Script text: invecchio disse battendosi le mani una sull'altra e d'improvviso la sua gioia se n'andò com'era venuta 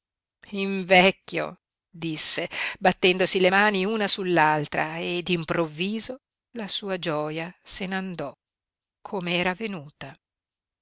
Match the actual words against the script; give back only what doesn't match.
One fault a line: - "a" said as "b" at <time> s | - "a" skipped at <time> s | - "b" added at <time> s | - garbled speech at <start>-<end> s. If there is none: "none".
none